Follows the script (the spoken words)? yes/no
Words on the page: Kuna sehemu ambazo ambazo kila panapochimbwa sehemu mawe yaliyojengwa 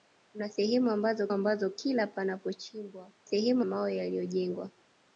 yes